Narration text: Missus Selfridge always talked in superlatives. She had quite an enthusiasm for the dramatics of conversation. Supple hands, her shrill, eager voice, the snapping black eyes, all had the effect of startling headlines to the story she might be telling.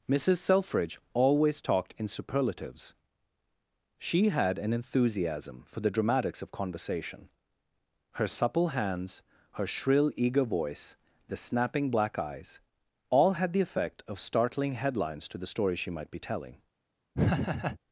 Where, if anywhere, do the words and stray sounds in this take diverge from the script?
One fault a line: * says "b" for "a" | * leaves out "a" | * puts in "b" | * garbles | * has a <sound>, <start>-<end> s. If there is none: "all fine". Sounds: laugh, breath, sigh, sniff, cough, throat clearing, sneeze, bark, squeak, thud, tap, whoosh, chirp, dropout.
* leaves out "quite"
* puts in "Her"
* has a laugh, 17.1-17.8 s